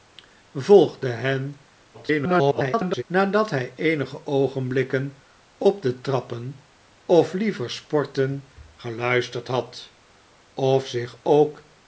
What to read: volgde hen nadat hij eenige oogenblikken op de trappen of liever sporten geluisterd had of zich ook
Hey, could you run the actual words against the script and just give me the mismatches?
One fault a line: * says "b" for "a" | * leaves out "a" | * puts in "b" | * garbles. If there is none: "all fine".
* garbles